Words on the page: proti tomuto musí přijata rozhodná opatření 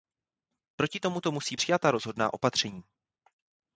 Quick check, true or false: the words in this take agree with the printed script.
true